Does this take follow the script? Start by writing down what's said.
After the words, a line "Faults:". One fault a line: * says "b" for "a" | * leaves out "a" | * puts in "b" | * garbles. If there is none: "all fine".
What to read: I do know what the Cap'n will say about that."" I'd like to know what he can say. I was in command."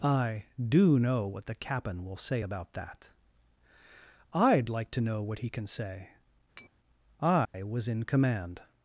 I do know what the Cap'n will say about that."" I'd like to know what he can say. I was in command."
Faults:
all fine